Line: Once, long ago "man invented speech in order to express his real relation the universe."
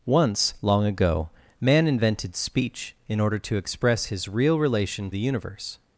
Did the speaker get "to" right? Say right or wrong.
right